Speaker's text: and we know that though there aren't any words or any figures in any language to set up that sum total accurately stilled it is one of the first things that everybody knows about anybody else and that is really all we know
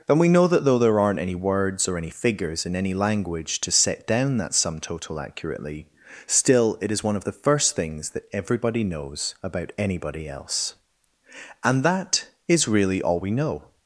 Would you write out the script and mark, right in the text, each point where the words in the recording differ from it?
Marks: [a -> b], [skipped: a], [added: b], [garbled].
and we know that though there aren't any words or any figures in any language to set [up -> down] that sum total accurately [stilled -> still] it is one of the first things that everybody knows about anybody else and that is really all we know